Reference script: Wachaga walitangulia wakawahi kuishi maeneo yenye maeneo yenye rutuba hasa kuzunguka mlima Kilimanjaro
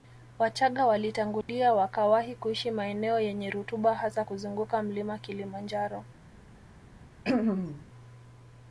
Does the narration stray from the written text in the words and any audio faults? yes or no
yes